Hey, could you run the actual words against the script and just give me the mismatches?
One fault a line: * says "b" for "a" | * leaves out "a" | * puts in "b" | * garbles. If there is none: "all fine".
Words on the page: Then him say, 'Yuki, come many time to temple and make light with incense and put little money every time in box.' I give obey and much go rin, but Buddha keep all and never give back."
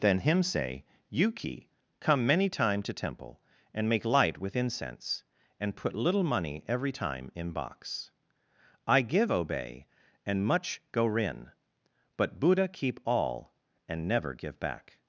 all fine